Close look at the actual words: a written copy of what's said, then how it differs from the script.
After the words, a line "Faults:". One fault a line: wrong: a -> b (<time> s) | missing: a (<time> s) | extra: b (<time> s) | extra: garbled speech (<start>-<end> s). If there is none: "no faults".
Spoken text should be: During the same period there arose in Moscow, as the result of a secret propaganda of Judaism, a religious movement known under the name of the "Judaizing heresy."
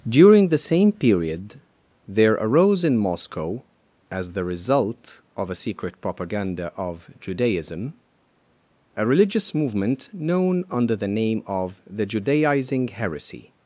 During the same period there arose in Moscow, as the result of a secret propaganda of Judaism, a religious movement known under the name of the "Judaizing heresy."
Faults:
no faults